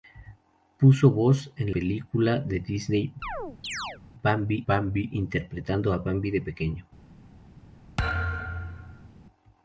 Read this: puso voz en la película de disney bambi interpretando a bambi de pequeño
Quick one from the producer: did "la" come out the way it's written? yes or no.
no